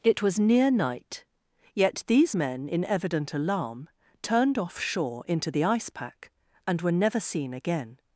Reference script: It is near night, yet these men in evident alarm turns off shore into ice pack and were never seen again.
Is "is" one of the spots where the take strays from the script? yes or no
yes